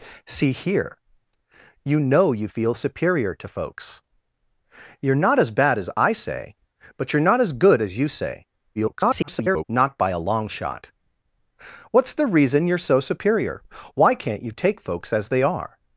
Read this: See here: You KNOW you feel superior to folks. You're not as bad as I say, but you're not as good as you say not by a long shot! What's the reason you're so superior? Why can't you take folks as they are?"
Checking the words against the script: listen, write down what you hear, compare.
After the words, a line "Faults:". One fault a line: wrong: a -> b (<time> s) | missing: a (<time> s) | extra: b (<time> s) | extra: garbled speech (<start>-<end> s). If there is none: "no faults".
See here: You KNOW you feel superior to folks. You're not as bad as I say, but you're not as good as you say [garbled] not by a long shot! What's the reason you're so superior? Why can't you take folks as they are?"
Faults:
extra: garbled speech (8.8-9.6 s)